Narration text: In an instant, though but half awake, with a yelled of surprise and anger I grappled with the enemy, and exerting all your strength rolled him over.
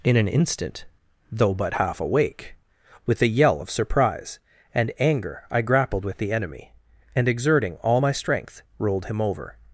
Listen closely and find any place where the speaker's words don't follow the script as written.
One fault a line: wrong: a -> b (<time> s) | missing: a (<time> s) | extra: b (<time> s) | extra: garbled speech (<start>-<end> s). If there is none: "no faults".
wrong: yelled -> yell (3.3 s)
wrong: your -> my (8.0 s)